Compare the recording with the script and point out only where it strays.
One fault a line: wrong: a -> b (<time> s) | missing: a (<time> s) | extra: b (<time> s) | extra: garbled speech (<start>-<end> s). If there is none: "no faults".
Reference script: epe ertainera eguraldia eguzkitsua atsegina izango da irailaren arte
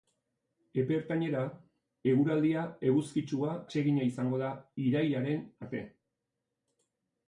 no faults